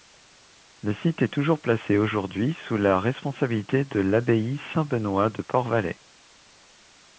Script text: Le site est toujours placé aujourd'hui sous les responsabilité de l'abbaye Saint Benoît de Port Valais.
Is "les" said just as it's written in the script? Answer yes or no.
no